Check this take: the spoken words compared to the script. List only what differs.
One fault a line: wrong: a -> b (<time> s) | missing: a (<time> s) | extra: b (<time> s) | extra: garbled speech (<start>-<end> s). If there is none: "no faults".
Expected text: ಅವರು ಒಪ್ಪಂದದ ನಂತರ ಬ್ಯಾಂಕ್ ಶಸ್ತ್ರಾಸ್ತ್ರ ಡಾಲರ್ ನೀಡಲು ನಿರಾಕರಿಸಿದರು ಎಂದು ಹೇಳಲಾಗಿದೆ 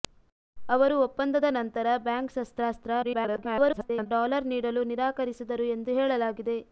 extra: garbled speech (3.0-4.1 s)